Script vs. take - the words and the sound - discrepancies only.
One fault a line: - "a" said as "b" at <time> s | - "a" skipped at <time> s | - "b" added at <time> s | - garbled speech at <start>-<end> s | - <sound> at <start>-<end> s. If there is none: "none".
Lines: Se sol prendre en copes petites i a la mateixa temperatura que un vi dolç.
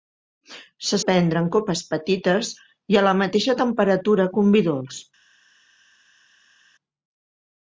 - "sol" skipped at 1.0 s